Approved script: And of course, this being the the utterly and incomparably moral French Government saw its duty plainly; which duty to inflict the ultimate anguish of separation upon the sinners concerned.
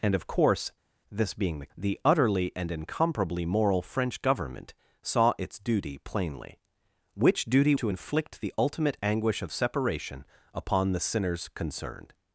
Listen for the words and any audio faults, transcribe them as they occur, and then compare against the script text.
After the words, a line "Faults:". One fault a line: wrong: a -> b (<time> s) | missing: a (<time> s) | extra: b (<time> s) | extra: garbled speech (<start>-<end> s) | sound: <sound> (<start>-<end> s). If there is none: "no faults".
And of course, this being the the utterly and incomparably moral French Government saw its duty plainly; which duty to inflict the ultimate anguish of separation upon the sinners concerned.
Faults:
no faults